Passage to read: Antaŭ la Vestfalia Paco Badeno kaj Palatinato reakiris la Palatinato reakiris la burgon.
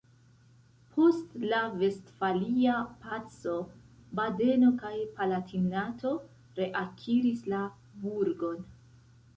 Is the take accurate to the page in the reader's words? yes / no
no